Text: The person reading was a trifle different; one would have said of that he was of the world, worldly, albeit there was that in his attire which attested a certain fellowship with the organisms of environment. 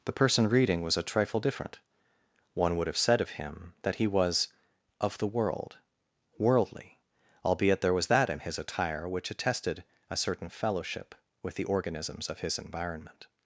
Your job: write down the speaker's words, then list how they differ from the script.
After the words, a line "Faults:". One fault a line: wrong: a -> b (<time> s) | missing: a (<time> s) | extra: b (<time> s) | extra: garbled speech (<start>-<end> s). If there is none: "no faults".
The person reading was a trifle different; one would have said of him that he was of the world, worldly, albeit there was that in his attire which attested a certain fellowship with the organisms of his environment.
Faults:
extra: him (3.3 s)
extra: his (12.4 s)